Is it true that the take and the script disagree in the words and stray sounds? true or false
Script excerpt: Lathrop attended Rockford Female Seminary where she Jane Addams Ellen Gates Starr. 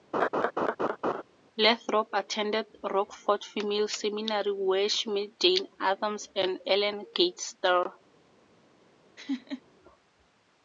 true